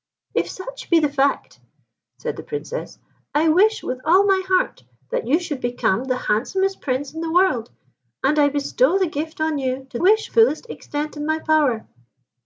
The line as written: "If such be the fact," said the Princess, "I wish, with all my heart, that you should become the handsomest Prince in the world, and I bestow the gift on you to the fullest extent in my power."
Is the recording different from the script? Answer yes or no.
yes